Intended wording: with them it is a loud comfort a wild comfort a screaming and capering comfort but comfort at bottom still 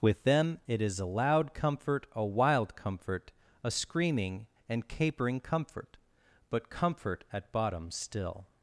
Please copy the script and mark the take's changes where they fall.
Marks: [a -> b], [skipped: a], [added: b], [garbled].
with them it is a loud comfort a wild comfort a screaming and capering comfort but comfort at bottom still